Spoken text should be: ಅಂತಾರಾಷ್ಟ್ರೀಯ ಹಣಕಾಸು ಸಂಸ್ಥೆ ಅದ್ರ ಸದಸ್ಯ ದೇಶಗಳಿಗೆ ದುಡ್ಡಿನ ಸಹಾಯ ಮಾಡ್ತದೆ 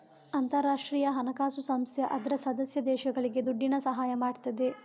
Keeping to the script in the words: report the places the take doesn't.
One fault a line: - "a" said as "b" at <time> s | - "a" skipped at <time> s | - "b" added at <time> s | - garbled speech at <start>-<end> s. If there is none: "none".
none